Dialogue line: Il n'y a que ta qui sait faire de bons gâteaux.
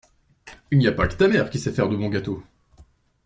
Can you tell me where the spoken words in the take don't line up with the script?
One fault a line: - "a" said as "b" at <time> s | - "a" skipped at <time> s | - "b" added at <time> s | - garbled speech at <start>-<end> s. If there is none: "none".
- "pas" added at 0.9 s
- "mère" added at 1.3 s